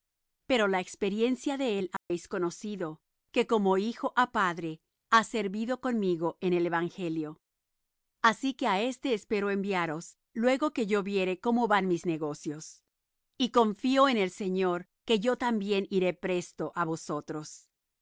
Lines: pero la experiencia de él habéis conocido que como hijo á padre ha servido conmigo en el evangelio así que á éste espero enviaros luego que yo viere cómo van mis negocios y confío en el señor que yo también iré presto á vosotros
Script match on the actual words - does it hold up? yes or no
yes